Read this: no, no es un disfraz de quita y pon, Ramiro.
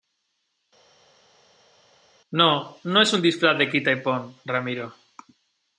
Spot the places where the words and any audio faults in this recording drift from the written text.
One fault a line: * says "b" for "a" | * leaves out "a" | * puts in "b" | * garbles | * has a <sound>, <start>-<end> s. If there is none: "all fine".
all fine